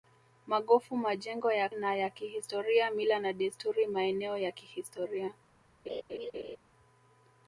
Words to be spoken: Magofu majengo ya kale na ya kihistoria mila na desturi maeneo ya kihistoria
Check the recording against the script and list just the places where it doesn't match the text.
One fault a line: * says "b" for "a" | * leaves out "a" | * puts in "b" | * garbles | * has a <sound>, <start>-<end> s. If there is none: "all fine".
* leaves out "kale"
* has a laugh, 5.9-6.6 s